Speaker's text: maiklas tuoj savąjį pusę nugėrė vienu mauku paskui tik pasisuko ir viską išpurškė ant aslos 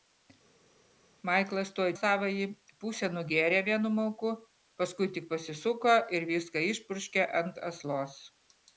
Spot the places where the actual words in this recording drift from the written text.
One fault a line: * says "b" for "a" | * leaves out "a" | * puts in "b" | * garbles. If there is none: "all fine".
all fine